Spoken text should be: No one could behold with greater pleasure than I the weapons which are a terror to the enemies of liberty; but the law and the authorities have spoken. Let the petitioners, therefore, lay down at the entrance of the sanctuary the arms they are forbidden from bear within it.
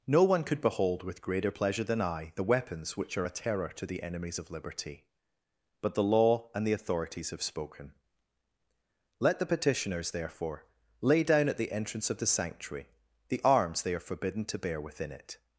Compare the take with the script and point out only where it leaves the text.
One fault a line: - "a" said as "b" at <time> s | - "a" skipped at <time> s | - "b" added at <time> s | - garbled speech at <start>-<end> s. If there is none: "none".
- "from" said as "to" at 14.4 s